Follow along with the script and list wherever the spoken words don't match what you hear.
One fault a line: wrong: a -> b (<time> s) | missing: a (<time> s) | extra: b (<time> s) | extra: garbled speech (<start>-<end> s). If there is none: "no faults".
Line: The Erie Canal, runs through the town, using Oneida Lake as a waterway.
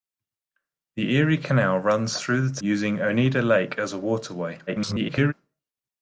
missing: town (2.6 s)
extra: garbled speech (4.7-5.3 s)